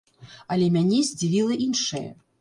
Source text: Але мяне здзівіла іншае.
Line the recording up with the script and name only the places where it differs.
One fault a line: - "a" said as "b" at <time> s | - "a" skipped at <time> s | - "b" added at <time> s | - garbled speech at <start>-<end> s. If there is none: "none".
none